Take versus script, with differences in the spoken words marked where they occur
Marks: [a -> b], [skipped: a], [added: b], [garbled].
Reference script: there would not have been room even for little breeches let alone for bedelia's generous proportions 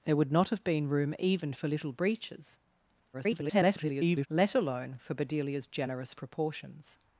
there would not have been room even for little breeches [garbled] let alone for bedelia's generous proportions